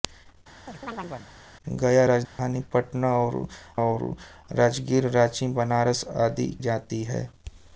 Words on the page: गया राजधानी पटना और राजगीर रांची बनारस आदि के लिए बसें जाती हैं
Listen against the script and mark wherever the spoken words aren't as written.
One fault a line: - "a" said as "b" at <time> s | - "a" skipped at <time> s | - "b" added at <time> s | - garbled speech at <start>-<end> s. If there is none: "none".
- "और" added at 3.8 s
- "के लिए बसें" skipped at 6.5 s